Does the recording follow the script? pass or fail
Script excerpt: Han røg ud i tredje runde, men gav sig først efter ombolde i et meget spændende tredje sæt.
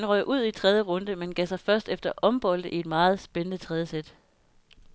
pass